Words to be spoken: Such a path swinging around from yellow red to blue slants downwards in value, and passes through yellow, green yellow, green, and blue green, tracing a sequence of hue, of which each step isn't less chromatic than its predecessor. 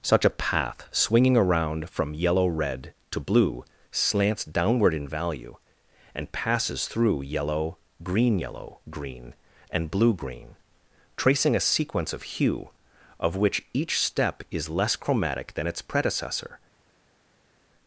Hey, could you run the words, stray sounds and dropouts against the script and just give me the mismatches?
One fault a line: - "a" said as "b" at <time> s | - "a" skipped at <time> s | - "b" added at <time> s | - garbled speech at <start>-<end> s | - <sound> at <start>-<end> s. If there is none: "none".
- "downwards" said as "downward" at 4.4 s
- "isn't" said as "is" at 14.5 s